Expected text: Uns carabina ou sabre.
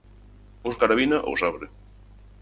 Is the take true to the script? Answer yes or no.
yes